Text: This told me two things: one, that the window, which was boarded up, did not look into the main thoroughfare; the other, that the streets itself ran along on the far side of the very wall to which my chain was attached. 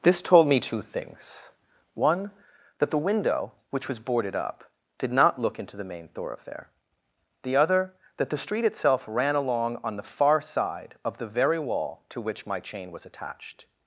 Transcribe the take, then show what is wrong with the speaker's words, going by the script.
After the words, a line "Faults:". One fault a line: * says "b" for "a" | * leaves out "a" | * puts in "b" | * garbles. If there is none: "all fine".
This told me two things: one, that the window, which was boarded up, did not look into the main thoroughfare; the other, that the street itself ran along on the far side of the very wall to which my chain was attached.
Faults:
* says "street" for "streets"